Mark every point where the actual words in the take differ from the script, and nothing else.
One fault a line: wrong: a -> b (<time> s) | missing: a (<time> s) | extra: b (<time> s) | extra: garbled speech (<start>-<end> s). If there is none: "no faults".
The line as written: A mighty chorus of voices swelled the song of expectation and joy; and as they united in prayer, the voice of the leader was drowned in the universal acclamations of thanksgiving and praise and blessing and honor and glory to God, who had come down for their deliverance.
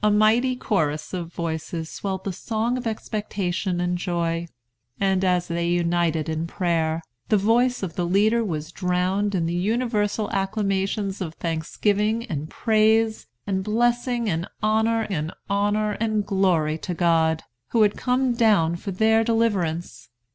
extra: honor and (15.5 s)